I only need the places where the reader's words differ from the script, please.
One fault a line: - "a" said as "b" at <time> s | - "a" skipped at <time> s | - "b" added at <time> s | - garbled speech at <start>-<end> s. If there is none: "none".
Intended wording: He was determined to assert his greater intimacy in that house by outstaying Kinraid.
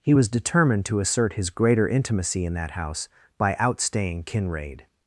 none